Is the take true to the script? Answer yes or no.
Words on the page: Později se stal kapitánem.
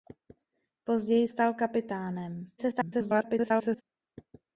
no